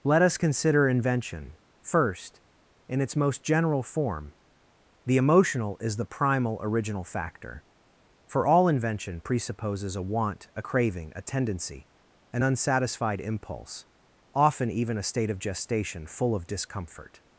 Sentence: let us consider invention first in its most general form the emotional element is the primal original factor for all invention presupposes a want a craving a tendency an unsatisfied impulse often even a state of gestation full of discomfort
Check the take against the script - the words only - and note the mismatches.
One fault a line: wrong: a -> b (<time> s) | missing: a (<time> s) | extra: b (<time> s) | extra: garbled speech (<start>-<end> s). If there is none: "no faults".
missing: element (5.8 s)